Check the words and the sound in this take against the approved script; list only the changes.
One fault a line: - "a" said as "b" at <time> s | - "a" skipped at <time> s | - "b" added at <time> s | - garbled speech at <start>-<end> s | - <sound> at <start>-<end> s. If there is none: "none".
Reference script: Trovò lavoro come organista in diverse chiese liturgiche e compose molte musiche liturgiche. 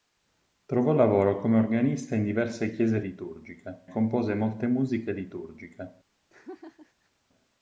- laugh at 6.3-7.1 s